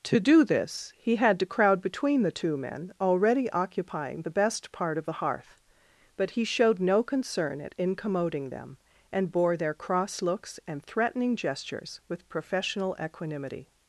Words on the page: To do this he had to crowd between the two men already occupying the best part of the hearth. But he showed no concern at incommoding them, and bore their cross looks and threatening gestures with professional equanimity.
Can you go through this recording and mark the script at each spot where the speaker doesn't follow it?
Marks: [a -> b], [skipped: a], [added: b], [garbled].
To do this he had to crowd between the two men already occupying the best part of the hearth. But he showed no concern at incommoding them, and bore their cross looks and threatening gestures with professional equanimity.